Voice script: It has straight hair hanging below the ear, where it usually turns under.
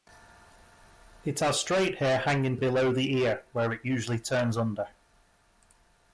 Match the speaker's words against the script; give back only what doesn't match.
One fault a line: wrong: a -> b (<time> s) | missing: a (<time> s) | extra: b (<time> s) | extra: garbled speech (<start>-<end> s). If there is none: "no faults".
no faults